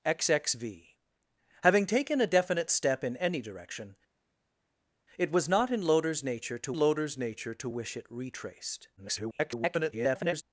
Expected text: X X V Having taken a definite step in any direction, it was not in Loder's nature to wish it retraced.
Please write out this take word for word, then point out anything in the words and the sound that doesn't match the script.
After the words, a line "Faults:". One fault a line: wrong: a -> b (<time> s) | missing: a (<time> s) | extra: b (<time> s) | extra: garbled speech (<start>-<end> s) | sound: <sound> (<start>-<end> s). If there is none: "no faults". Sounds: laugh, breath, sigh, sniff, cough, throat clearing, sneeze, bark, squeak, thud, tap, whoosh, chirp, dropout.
X X V Having taken a definite step in any direction, it was not in Loder's nature to Loder's nature to wish it retraced. [garbled]
Faults:
extra: Loder's nature to (6.7 s)
extra: garbled speech (9.0-10.4 s)